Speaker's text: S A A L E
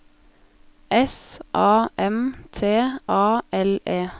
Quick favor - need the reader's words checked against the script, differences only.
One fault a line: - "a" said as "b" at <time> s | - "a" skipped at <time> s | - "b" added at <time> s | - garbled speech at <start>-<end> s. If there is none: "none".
- "M T" added at 2.0 s